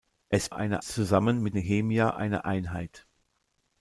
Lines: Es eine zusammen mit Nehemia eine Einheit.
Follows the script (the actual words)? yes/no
yes